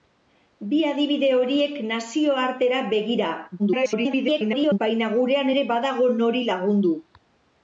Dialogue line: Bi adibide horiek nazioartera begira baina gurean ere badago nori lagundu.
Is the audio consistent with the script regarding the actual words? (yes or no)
no